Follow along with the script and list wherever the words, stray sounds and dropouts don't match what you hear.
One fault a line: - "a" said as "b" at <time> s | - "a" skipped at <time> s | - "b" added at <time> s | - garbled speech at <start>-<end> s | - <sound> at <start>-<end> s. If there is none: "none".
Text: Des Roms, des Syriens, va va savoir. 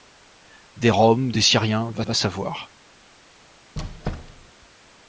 - squeak at 3.8-4.5 s